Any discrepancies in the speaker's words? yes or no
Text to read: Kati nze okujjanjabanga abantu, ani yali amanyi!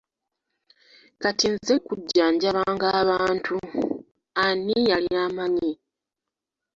no